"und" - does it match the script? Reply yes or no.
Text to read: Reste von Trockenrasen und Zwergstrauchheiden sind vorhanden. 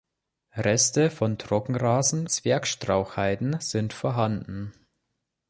no